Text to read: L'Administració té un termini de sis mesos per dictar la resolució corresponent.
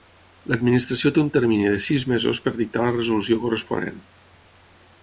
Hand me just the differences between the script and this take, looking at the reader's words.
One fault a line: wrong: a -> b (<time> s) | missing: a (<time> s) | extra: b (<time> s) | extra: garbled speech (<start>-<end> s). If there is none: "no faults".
no faults